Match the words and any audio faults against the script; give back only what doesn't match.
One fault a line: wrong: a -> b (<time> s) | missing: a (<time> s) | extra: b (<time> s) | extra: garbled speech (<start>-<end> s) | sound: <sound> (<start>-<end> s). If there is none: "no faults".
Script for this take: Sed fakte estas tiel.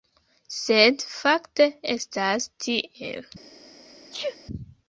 sound: sneeze (4.1-4.4 s)